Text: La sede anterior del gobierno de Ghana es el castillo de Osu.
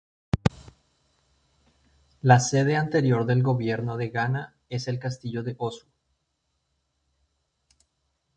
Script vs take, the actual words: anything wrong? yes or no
no